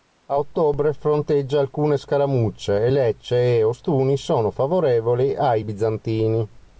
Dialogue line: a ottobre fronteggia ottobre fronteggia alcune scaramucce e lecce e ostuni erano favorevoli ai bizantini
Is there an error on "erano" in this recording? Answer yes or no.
yes